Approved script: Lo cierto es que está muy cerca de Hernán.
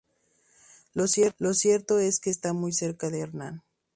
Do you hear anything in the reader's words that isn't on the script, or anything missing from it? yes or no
no